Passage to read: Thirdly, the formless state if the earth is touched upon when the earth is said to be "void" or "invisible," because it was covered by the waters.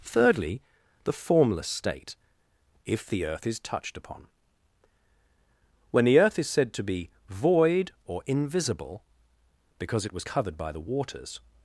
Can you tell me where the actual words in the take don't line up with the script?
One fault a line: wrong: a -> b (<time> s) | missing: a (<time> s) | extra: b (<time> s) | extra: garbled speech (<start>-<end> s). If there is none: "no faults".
no faults